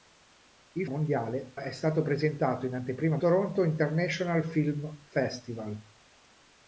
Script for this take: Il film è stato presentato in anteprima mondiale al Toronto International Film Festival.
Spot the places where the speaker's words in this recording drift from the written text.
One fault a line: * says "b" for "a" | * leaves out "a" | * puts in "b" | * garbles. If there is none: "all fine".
* says "mondiale" for "film"
* leaves out "mondiale al"